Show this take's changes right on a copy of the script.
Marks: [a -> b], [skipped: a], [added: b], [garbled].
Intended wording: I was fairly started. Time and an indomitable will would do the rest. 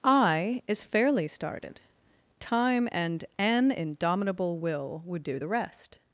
I [was -> is] fairly started. Time and an indomitable will would do the rest.